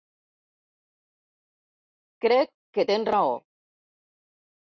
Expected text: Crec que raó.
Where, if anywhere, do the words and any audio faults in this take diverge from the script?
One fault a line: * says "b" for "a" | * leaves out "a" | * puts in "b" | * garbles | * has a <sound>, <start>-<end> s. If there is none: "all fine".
* puts in "tens"